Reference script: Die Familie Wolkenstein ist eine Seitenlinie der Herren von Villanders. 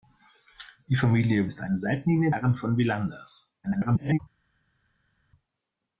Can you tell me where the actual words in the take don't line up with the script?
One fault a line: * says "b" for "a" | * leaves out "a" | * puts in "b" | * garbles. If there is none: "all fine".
* leaves out "Wolkenstein"
* leaves out "der"
* garbles